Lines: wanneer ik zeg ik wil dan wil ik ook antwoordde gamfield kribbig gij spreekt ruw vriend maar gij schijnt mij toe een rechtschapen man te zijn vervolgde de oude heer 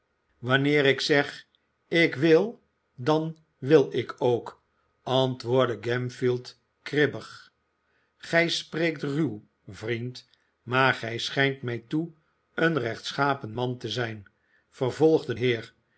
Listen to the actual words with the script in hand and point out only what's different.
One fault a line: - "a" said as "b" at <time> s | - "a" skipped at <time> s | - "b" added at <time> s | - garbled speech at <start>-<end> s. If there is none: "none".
- "de oude" skipped at 15.3 s